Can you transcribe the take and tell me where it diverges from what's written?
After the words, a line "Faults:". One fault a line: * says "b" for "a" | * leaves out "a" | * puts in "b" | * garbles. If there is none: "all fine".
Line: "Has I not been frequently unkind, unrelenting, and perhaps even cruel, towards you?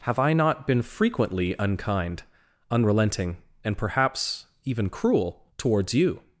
"Have I not been frequently unkind, unrelenting, and perhaps even cruel, towards you?
Faults:
* says "Have" for "Has"